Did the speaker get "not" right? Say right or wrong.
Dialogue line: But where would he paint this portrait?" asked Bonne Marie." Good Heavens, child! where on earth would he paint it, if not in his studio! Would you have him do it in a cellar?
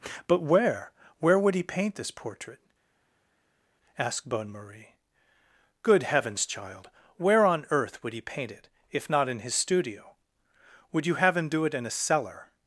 right